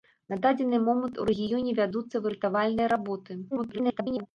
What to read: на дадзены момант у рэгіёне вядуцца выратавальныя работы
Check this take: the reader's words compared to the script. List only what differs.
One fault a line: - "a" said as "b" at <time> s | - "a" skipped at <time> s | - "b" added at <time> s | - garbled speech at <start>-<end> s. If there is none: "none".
- garbled speech at 3.5-4.3 s